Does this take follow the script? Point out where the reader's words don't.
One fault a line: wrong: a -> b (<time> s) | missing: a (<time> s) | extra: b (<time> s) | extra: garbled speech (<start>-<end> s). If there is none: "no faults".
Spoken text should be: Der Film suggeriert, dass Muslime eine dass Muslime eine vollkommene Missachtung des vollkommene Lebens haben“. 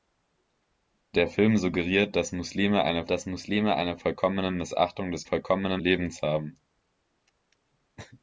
no faults